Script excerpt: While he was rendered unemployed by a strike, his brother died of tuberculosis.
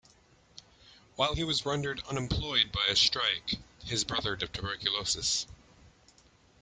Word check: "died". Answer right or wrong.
wrong